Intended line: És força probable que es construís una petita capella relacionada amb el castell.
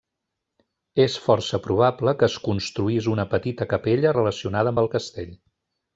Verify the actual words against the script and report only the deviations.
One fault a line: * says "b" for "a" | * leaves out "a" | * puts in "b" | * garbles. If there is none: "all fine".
all fine